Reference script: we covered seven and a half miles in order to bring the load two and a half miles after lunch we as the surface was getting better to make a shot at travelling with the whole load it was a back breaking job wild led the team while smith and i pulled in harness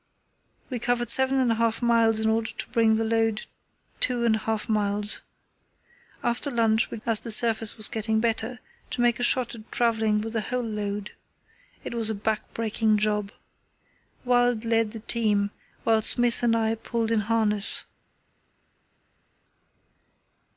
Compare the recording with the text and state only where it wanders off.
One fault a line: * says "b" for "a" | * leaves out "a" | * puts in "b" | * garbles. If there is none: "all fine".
all fine